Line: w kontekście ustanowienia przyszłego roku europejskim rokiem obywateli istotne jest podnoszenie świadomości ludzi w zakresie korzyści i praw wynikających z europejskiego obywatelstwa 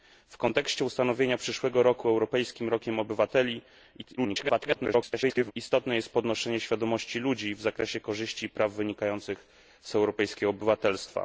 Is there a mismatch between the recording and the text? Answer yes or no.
yes